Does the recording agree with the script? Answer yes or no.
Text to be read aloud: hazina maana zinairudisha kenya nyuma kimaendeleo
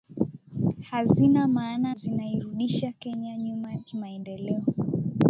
yes